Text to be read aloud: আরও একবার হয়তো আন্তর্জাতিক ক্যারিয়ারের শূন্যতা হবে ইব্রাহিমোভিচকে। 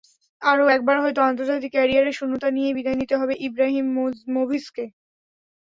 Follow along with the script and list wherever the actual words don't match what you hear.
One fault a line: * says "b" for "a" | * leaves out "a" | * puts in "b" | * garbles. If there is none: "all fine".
* puts in "নিয়েই বিদায় নিতে"